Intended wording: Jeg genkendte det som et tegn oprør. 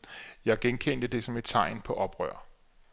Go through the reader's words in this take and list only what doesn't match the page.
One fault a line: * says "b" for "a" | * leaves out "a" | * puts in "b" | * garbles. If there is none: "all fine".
* puts in "på"